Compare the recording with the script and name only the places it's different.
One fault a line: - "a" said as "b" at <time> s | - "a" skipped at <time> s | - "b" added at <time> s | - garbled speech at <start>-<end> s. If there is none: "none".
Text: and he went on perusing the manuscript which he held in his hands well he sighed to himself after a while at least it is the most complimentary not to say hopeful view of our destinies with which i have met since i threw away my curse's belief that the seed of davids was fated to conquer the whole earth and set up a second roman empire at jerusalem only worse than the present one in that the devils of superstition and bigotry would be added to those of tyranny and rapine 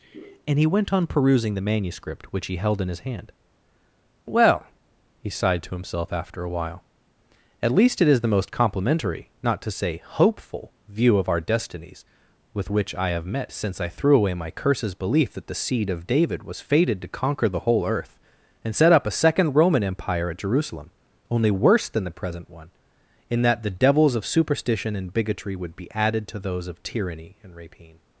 - "hands" said as "hand" at 3.0 s
- "davids" said as "david" at 16.1 s